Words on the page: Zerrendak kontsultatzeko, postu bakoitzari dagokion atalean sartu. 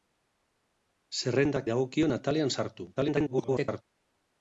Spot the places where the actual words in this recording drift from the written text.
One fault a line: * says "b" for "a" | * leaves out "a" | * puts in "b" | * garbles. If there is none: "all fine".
* leaves out "kontsultatzeko postu bakoitzari"
* garbles